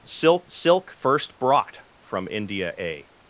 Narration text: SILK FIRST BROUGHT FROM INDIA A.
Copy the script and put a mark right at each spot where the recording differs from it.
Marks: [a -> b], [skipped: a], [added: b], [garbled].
SILK [added: silk] FIRST BROUGHT FROM INDIA A.